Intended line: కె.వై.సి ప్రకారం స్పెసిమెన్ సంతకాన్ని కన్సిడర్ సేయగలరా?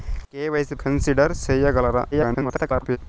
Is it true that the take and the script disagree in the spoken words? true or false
true